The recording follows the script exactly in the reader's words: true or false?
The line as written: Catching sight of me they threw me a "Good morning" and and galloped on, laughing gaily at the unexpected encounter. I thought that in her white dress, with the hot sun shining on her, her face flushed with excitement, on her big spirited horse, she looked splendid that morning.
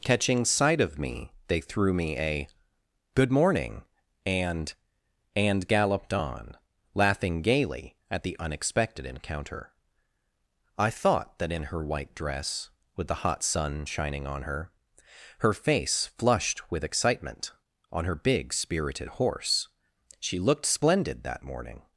true